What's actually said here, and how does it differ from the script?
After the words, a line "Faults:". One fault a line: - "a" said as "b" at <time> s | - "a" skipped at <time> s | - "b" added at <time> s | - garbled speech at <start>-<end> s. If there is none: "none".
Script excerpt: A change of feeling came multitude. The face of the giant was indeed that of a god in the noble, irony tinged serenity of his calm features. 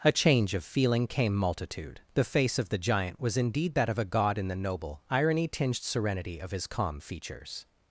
A change of feeling came multitude. The face of the giant was indeed that of a god in the noble, irony tinged serenity of his calm features.
Faults:
none